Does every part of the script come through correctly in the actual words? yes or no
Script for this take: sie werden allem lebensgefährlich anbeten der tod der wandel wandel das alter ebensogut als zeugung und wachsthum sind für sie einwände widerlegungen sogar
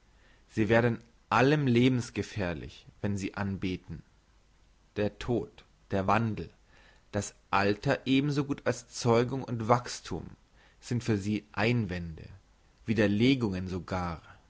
no